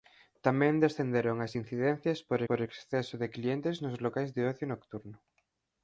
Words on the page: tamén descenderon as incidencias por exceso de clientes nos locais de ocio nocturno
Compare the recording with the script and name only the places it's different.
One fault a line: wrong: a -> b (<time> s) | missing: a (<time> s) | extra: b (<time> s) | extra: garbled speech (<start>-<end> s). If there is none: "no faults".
extra: por (2.5 s)